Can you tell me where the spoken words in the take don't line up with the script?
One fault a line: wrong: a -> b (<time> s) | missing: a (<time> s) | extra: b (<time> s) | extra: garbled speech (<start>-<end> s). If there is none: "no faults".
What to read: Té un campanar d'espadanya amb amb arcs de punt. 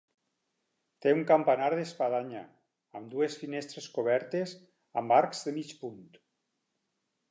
extra: dues finestres cobertes (3.1 s)
extra: mig (5.6 s)